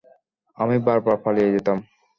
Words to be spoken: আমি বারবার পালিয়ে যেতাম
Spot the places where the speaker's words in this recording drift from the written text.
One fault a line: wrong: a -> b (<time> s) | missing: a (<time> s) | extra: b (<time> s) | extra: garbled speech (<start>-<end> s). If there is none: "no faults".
no faults